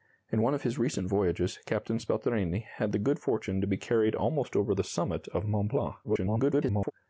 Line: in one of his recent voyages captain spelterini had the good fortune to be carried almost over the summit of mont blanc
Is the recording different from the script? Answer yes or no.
yes